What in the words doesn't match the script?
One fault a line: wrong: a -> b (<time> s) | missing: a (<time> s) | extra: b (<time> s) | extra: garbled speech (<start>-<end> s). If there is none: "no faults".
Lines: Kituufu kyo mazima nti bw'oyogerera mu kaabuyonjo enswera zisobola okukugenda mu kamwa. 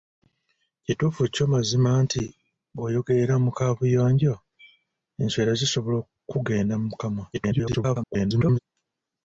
extra: garbled speech (7.3-8.6 s)